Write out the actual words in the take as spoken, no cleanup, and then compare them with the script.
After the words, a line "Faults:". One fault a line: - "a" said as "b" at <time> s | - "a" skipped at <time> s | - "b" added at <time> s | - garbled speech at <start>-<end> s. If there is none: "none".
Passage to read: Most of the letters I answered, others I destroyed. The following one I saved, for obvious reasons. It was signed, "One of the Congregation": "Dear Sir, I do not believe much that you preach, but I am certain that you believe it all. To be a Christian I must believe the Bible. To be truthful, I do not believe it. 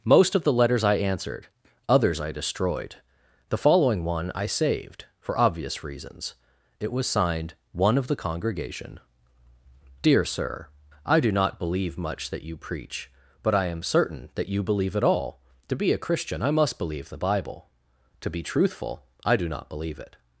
Most of the letters I answered, others I destroyed. The following one I saved, for obvious reasons. It was signed, "One of the Congregation": "Dear Sir, I do not believe much that you preach, but I am certain that you believe it all. To be a Christian I must believe the Bible. To be truthful, I do not believe it.
Faults:
none